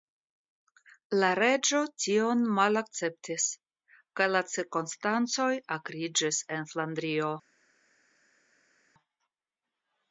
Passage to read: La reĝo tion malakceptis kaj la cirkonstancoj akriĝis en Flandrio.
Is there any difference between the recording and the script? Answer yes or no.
no